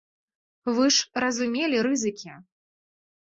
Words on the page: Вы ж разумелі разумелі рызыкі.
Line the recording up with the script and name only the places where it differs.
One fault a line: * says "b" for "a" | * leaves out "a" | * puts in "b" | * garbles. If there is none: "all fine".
* leaves out "разумелі"